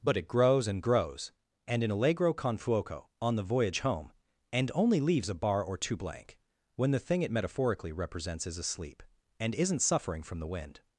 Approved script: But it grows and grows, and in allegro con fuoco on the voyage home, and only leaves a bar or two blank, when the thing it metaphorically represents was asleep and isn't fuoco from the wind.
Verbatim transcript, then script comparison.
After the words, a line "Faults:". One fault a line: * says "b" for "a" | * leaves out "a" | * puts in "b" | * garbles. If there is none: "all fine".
But it grows and grows, and in allegro con fuoco on the voyage home, and only leaves a bar or two blank, when the thing it metaphorically represents is asleep and isn't suffering from the wind.
Faults:
* says "is" for "was"
* says "suffering" for "fuoco"